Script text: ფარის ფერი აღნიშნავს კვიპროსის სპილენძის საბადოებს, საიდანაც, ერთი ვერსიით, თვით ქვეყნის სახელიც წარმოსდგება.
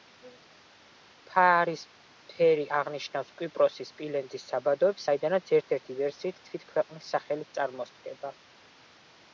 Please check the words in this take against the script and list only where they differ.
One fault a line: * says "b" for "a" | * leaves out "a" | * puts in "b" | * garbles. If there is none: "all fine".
* puts in "ერთ"